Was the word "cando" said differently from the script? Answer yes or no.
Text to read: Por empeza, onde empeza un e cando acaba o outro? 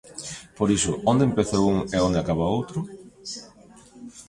yes